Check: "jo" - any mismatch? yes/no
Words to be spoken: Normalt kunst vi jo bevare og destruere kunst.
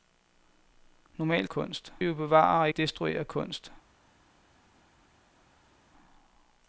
no